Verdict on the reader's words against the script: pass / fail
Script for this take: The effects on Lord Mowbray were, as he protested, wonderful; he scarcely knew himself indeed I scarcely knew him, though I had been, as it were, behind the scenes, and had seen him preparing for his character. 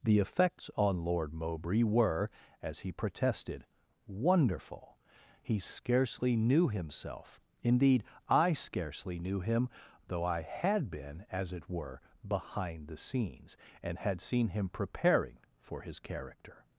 pass